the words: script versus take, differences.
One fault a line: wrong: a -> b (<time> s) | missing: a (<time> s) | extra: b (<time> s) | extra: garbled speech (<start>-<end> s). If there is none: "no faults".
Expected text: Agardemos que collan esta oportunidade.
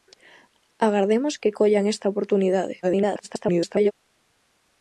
extra: garbled speech (2.8-3.9 s)